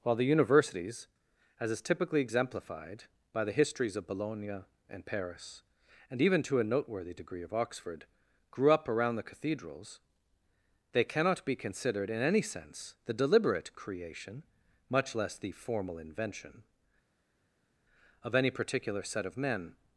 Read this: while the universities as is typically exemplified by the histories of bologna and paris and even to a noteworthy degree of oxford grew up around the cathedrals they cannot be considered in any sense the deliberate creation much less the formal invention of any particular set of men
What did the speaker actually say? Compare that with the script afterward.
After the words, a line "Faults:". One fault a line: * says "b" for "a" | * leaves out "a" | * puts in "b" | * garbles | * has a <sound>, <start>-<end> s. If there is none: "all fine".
while the universities as is typically exemplified by the histories of bologna and paris and even to a noteworthy degree of oxford grew up around the cathedrals they cannot be considered in any sense the deliberate creation much less the formal invention of any particular set of men
Faults:
all fine